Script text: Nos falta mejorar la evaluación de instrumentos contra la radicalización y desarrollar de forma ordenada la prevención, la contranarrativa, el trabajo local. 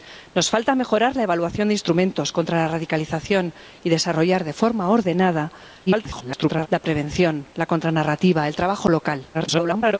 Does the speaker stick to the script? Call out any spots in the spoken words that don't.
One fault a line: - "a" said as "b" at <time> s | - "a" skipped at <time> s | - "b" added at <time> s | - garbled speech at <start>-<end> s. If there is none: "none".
- garbled speech at 5.9-6.7 s
- garbled speech at 9.3-10.0 s